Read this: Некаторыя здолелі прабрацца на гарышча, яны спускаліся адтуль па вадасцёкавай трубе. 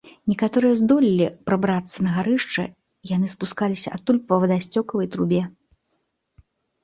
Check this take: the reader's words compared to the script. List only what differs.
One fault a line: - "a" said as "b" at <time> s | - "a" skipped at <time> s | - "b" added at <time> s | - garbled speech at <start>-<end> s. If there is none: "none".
none